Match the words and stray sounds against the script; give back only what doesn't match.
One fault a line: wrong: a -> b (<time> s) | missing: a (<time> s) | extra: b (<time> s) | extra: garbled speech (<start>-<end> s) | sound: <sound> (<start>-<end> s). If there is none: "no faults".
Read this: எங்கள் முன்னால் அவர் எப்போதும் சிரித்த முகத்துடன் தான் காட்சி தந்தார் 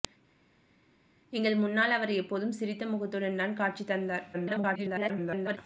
extra: garbled speech (4.3-5.6 s)